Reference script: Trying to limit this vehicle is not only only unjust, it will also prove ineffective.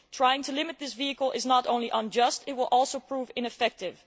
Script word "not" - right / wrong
right